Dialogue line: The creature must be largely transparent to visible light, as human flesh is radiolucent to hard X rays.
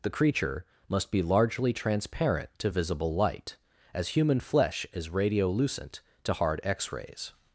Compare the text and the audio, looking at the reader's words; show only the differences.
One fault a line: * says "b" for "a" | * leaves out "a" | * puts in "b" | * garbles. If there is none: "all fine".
all fine